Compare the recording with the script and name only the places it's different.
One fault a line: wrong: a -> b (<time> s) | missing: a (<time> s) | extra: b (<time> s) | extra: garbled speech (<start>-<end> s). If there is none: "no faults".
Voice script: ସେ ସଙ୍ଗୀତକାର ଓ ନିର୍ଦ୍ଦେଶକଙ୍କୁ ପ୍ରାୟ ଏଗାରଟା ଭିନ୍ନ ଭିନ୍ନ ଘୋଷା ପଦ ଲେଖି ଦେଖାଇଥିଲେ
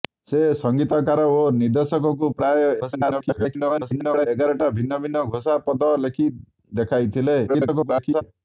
extra: garbled speech (2.8-4.3 s)
extra: garbled speech (7.5-8.2 s)